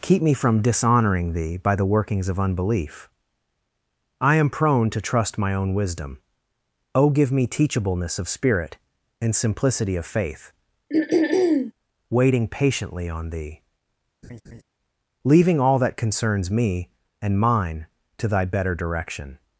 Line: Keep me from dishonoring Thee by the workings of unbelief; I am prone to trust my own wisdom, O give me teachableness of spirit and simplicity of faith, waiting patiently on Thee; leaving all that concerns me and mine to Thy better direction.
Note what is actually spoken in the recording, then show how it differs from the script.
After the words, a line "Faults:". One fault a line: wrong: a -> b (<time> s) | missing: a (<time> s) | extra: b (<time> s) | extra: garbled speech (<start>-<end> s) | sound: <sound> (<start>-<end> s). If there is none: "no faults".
Keep me from dishonoring Thee by the workings of unbelief; I am prone to trust my own wisdom, O give me teachableness of spirit and simplicity of faith, waiting patiently on Thee; leaving all that concerns me and mine to Thy better direction.
Faults:
sound: throat clearing (10.9-11.7 s)
sound: laugh (14.2-14.6 s)